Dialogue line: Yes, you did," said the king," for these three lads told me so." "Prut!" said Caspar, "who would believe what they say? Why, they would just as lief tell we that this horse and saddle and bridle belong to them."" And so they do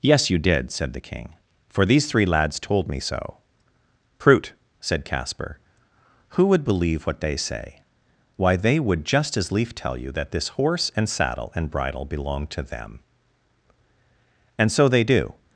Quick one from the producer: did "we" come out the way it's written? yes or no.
no